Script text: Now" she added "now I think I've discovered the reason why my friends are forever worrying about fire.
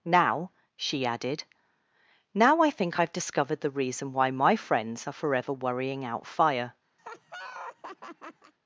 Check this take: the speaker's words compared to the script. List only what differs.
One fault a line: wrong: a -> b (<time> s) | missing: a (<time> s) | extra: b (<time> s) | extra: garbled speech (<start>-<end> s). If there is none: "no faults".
wrong: about -> out (6.0 s)